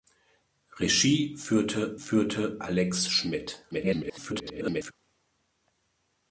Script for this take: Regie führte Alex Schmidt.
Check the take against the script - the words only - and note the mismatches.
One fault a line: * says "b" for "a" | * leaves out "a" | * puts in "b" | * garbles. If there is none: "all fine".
* puts in "führte"
* garbles